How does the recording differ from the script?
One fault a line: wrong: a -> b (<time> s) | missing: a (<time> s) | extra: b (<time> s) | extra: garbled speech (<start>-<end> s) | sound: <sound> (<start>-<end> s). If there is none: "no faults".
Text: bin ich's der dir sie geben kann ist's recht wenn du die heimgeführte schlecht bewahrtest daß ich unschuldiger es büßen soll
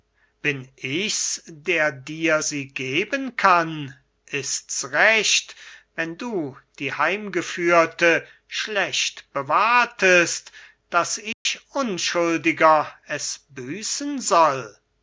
sound: dropout (11.3-11.5 s)